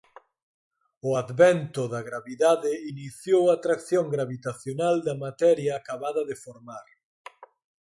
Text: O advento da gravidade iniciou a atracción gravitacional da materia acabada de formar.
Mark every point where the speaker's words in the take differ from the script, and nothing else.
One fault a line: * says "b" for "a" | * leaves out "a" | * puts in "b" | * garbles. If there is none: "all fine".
all fine